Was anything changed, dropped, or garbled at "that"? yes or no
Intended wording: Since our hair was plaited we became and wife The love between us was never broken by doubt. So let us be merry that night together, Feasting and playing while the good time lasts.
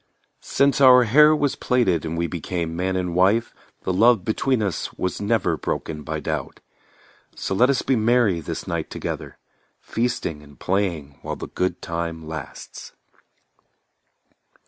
yes